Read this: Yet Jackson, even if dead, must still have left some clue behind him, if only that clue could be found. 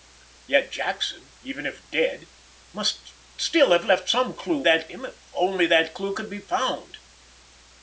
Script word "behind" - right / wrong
wrong